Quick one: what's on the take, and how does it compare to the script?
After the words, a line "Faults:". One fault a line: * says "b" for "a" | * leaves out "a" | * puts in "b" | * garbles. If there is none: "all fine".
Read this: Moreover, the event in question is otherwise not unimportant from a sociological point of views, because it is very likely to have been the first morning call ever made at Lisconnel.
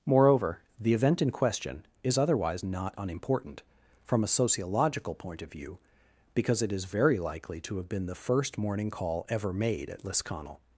Moreover, the event in question is otherwise not unimportant from a sociological point of view, because it is very likely to have been the first morning call ever made at Lisconnel.
Faults:
* says "view" for "views"